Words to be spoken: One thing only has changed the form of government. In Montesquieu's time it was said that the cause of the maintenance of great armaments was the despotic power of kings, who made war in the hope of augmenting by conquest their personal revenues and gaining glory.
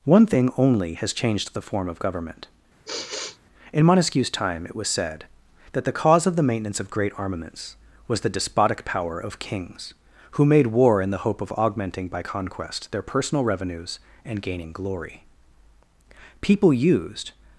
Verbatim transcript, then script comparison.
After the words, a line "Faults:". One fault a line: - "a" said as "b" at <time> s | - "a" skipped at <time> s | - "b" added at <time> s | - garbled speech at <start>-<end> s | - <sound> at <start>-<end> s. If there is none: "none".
One thing only has changed the form of government. In Montesquieu's time it was said that the cause of the maintenance of great armaments was the despotic power of kings, who made war in the hope of augmenting by conquest their personal revenues and gaining glory. People used
Faults:
- sigh at 2.8-3.4 s
- "People used" added at 16.4 s